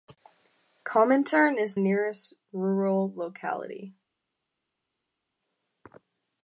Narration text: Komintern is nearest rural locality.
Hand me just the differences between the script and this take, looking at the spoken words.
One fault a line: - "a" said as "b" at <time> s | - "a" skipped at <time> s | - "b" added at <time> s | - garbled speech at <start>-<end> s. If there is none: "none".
none